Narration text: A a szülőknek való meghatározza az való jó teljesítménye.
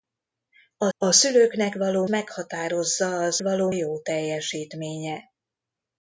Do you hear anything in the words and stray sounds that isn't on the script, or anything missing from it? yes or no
no